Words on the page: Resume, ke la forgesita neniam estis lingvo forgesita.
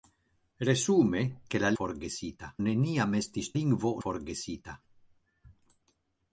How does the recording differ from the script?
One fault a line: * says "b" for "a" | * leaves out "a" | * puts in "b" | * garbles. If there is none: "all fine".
all fine